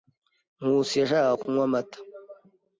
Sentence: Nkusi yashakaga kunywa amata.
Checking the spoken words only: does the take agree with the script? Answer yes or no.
yes